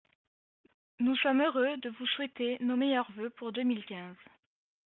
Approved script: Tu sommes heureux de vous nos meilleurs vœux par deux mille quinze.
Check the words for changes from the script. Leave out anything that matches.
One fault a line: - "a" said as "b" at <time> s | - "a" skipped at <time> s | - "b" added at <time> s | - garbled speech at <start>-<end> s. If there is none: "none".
- "Tu" said as "Nous" at 1.0 s
- "souhaiter" added at 2.1 s
- "par" said as "pour" at 3.3 s